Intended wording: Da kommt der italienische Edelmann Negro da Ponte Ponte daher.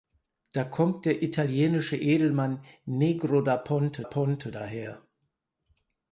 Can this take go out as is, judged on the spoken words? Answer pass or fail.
pass